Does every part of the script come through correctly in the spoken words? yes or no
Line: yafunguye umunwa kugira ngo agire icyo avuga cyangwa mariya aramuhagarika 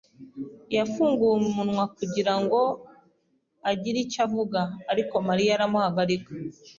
no